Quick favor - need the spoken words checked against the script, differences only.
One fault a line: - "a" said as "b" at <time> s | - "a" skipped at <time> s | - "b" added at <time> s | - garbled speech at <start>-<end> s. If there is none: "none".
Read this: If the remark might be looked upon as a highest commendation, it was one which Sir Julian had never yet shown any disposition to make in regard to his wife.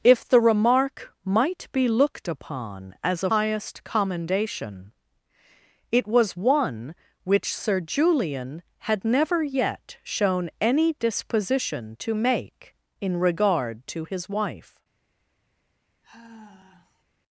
none